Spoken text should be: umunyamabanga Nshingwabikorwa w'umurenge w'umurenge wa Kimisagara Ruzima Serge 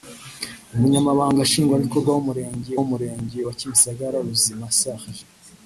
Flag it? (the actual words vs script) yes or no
no